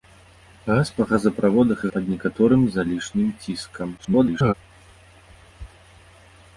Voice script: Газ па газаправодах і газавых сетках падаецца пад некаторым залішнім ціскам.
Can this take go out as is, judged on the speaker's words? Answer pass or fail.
fail